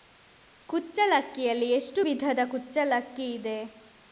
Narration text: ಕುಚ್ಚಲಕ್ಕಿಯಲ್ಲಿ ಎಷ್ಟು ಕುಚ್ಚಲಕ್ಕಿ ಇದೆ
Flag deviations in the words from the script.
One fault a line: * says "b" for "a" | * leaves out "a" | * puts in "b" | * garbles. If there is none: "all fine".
* puts in "ವಿಧದ"